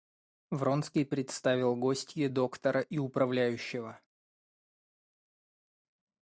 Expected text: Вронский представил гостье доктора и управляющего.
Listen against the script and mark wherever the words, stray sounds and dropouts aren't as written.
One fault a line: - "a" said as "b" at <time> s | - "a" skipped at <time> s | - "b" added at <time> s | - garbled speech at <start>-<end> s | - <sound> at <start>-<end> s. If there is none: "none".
none